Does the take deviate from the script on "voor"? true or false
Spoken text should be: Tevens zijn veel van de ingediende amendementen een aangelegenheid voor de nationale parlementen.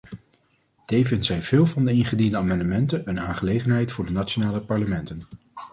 false